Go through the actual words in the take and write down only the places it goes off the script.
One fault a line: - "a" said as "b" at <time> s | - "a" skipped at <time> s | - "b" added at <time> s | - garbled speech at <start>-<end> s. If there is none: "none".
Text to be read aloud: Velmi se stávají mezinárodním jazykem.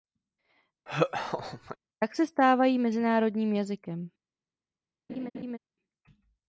- "Velmi" said as "Tak" at 2.0 s